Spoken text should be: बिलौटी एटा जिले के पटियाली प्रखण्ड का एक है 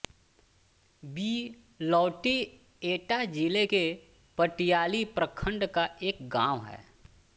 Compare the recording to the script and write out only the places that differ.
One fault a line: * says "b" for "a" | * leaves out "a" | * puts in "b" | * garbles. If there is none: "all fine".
* puts in "गाँव"